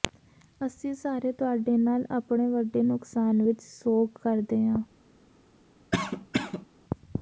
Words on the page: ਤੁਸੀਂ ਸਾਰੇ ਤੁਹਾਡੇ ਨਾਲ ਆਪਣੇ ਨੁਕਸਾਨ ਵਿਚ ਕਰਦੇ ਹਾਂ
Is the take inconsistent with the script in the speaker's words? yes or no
yes